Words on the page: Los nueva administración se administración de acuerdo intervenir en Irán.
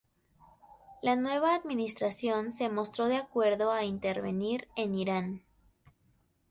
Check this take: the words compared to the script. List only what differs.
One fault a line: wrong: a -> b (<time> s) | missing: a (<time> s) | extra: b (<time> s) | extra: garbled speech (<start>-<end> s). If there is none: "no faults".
wrong: Los -> La (1.0 s)
wrong: administración -> mostró (2.7 s)
extra: a (3.7 s)